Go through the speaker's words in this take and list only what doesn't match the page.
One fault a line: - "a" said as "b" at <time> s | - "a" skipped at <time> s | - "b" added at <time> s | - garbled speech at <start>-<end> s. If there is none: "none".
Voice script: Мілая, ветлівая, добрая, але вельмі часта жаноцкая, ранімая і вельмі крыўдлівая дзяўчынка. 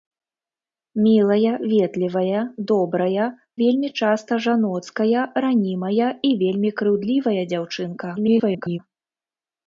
- "але" skipped at 3.3 s
- garbled speech at 8.2-8.8 s